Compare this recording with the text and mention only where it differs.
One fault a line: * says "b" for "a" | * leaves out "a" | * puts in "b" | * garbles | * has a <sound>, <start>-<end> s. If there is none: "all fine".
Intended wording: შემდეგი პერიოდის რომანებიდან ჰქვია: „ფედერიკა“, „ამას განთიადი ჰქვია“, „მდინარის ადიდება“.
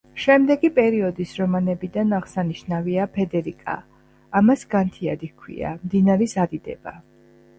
* says "აღსანიშნავია" for "ჰქვია"